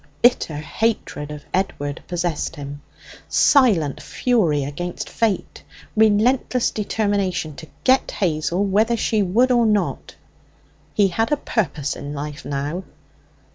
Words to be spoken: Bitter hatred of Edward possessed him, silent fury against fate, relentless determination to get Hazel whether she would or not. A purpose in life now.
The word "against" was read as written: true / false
true